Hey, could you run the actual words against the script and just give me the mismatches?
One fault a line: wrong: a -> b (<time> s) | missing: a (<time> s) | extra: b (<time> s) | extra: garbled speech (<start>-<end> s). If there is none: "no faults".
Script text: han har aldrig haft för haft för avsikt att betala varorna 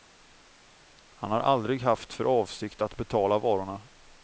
missing: haft för (2.2 s)